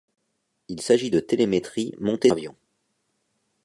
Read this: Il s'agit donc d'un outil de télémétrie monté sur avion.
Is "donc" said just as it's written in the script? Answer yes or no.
no